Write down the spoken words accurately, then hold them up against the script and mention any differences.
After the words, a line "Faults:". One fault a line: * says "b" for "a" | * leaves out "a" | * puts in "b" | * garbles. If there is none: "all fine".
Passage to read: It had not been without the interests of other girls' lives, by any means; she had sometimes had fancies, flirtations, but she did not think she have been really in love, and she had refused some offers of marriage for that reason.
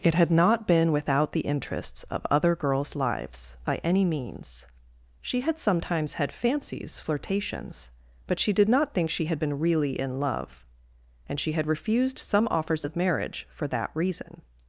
It had not been without the interests of other girls' lives, by any means; she had sometimes had fancies, flirtations, but she did not think she had been really in love, and she had refused some offers of marriage for that reason.
Faults:
* says "had" for "have"